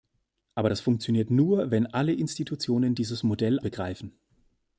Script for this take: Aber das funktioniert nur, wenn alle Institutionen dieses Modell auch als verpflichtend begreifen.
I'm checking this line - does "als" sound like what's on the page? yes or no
no